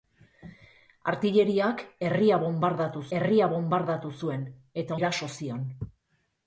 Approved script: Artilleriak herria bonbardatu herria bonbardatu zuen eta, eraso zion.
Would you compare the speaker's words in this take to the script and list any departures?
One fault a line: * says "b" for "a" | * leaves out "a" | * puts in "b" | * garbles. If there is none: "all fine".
all fine